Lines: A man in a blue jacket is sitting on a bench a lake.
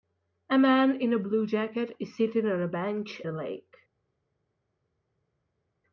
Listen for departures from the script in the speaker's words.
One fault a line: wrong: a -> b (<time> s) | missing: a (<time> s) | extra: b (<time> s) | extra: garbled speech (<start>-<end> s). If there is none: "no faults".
no faults